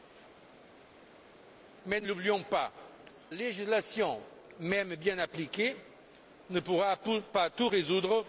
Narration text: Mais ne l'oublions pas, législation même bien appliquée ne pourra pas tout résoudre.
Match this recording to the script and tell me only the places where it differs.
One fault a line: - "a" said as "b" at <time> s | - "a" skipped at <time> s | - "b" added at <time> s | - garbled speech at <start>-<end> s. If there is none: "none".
none